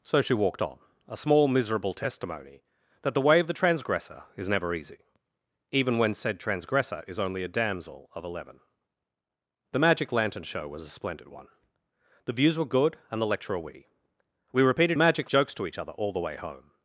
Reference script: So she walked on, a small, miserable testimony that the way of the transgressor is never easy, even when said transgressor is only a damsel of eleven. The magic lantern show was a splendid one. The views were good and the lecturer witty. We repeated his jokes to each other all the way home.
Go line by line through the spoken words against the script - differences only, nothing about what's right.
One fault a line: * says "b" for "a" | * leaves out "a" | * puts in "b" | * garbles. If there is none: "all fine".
* says "magic" for "his"